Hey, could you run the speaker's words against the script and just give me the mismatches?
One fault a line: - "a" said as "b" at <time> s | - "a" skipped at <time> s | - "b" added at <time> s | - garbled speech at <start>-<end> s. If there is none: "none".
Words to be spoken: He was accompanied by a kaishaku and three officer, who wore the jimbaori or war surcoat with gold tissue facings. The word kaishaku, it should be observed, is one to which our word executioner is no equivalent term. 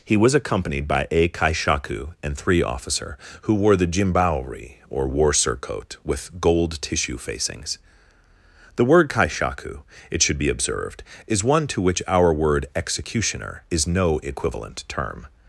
none